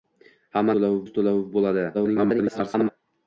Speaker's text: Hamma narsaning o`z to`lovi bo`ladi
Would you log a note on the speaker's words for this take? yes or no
yes